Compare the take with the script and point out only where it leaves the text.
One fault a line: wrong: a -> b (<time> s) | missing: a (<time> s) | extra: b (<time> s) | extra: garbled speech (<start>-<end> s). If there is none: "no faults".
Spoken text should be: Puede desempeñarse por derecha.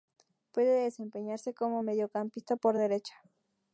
extra: como mediocampista (1.5 s)